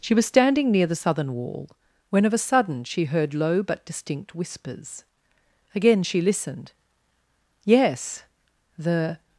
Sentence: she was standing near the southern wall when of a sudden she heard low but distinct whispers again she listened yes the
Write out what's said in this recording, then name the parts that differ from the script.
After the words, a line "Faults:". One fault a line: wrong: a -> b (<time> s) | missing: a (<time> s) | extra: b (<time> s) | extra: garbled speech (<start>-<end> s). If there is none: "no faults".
she was standing near the southern wall when of a sudden she heard low but distinct whispers again she listened yes the
Faults:
no faults